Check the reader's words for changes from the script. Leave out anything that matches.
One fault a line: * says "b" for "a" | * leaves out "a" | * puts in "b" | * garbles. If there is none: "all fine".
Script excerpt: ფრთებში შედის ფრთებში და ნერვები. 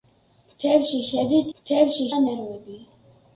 all fine